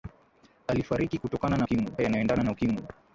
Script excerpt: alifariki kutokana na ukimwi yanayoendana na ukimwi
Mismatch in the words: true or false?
false